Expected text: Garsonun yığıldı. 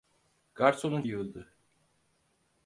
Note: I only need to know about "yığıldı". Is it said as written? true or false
true